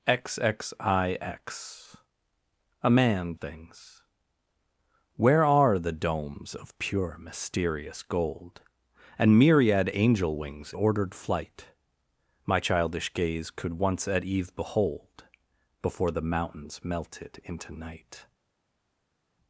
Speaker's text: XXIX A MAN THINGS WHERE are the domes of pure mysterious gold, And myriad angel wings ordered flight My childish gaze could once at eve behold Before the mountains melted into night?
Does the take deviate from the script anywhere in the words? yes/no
no